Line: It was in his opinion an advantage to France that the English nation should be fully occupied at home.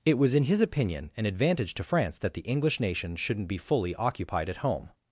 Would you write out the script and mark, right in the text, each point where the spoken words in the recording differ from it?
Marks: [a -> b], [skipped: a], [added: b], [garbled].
It was in his opinion an advantage to France that the English nation [should -> shouldn't] be fully occupied at home.